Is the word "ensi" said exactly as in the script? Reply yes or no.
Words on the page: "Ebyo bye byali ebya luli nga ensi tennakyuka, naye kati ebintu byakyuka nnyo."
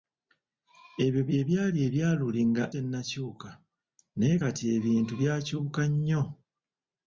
no